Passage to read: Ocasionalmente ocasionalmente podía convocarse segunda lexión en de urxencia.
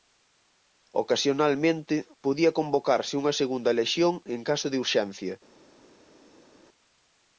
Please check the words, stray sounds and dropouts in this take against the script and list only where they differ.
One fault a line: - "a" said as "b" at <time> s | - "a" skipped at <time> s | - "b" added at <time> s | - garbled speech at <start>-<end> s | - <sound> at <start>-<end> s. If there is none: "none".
- "ocasionalmente" skipped at 2.0 s
- "unha" added at 3.2 s
- "caso" added at 4.5 s